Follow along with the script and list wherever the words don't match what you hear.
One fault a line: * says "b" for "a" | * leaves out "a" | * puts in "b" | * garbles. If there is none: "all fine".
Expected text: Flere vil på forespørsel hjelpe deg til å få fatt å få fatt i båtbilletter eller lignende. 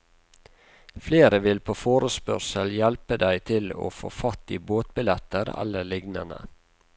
* leaves out "å få fatt"